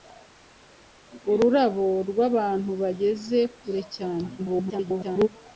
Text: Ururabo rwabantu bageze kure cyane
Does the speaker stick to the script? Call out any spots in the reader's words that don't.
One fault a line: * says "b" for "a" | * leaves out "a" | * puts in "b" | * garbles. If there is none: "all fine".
* garbles